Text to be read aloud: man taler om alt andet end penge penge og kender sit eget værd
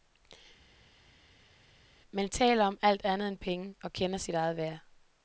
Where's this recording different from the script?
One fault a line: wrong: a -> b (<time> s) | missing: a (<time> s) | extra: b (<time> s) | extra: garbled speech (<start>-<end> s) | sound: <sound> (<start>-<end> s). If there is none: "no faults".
missing: penge (3.7 s)